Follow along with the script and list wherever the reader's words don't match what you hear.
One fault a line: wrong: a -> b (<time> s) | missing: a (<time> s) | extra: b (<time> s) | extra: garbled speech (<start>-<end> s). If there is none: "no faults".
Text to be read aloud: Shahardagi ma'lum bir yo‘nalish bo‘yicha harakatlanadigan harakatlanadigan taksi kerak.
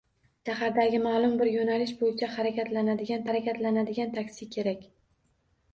no faults